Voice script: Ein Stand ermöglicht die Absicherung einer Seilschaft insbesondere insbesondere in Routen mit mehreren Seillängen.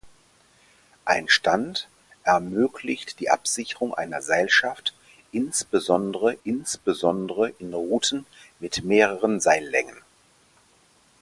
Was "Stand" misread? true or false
false